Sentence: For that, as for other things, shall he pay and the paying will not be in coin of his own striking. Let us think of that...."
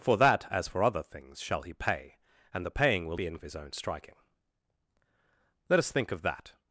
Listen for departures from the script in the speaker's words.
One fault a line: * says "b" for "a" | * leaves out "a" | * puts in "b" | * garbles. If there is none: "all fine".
* leaves out "not"
* leaves out "coin"